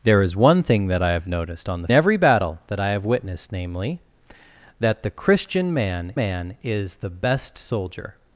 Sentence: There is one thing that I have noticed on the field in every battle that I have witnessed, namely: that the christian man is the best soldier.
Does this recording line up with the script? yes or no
no